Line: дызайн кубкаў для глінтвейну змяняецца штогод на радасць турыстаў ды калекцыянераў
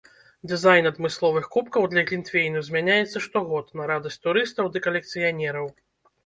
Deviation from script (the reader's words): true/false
true